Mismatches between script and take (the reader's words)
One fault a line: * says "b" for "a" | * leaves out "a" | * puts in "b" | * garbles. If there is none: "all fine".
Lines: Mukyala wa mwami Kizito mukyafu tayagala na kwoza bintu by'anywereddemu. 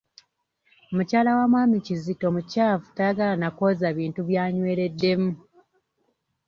all fine